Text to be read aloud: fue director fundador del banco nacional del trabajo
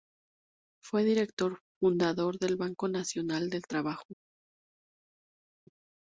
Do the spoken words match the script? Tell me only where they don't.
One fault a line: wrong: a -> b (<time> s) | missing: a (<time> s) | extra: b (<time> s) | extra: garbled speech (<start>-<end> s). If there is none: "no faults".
no faults